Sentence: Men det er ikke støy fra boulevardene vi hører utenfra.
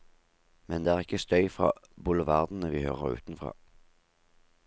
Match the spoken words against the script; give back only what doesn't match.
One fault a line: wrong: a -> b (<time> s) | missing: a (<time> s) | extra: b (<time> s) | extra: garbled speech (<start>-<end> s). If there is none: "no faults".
no faults